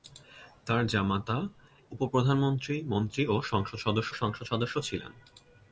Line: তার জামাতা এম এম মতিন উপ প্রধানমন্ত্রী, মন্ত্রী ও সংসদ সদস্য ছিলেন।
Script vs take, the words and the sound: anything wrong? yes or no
yes